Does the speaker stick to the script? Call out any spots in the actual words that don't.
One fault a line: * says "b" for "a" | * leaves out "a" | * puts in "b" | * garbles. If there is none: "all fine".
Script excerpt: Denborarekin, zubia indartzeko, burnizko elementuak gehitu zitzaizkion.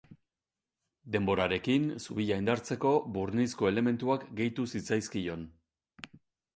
all fine